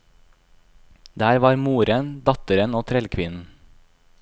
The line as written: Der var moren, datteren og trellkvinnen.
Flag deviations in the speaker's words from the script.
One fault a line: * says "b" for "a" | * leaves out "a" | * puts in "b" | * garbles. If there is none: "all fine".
all fine